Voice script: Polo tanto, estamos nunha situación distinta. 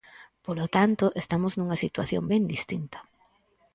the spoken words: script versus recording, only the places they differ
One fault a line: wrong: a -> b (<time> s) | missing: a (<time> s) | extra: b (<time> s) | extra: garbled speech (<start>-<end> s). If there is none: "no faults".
extra: ben (2.3 s)